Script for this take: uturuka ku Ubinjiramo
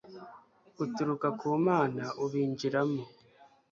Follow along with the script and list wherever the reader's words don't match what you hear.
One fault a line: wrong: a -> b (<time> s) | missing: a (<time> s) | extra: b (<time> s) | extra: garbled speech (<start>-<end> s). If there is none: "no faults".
extra: Mana (1.7 s)